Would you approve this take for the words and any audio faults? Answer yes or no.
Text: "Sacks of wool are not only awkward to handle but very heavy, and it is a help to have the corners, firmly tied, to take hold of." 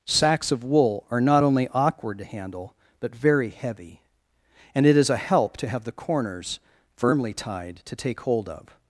yes